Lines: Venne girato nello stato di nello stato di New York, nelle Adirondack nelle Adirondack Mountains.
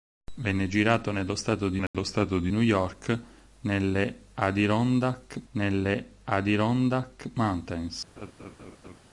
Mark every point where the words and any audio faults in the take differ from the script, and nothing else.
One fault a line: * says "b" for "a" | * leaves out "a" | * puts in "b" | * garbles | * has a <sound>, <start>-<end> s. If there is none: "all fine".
* has a dropout, 1.9-1.9 s
* has a laugh, 8.2-9.0 s